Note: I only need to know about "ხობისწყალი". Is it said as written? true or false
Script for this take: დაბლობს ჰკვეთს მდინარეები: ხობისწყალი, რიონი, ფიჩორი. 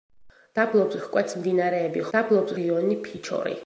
false